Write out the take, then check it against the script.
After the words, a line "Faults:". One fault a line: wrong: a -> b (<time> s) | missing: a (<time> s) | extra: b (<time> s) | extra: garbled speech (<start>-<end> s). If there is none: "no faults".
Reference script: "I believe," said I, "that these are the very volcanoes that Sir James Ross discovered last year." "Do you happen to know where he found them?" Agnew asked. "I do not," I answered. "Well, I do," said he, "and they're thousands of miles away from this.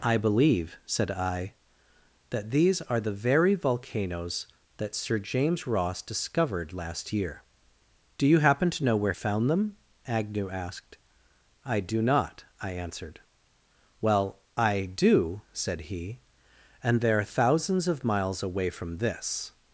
"I believe," said I, "that these are the very volcanoes that Sir James Ross discovered last year." "Do you happen to know where found them?" Agnew asked. "I do not," I answered. "Well, I do," said he, "and they're thousands of miles away from this.
Faults:
missing: he (9.1 s)